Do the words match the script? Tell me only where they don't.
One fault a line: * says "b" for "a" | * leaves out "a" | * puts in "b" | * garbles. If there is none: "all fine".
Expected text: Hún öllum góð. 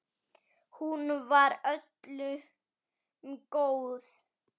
* puts in "var"